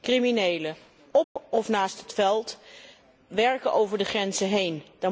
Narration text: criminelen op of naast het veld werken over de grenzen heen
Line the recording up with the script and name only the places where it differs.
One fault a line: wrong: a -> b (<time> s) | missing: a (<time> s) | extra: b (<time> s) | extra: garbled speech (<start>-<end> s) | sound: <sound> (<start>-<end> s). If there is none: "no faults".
sound: dropout (1.2-1.4 s)